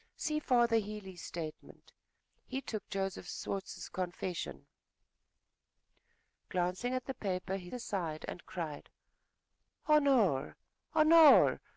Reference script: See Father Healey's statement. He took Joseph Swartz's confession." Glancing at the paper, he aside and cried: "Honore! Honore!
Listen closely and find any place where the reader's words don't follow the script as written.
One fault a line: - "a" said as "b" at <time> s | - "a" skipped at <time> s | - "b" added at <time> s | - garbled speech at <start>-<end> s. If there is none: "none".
none